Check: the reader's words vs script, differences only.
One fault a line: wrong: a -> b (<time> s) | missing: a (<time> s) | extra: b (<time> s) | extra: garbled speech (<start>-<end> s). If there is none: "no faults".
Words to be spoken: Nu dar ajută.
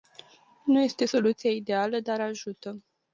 extra: este soluția ideală (0.8 s)